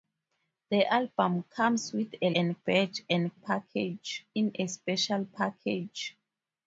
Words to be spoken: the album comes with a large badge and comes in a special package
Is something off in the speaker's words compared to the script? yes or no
yes